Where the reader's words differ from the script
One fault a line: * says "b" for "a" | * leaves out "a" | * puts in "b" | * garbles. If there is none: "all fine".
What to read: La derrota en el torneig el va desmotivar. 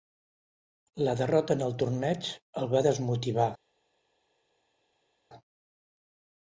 all fine